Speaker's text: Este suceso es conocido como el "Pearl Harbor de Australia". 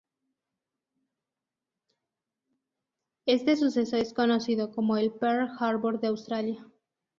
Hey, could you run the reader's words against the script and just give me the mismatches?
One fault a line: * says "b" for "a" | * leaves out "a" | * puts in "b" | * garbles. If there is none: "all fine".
all fine